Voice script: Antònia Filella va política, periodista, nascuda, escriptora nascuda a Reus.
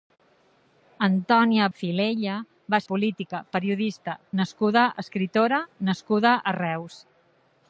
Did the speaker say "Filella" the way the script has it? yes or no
yes